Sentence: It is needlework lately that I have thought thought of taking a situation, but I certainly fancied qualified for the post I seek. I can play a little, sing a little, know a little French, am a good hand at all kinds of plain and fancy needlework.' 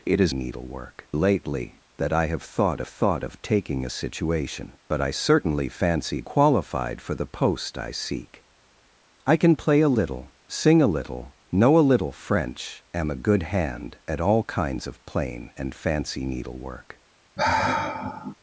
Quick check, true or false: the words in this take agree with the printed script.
true